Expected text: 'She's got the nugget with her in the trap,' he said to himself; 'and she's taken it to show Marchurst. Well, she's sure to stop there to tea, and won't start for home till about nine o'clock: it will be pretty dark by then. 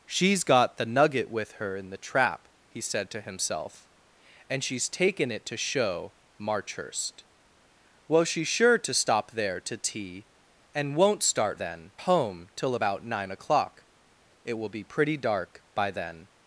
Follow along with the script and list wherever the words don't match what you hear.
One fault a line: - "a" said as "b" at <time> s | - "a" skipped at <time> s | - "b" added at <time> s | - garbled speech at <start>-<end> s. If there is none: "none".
- "for" said as "then" at 11.5 s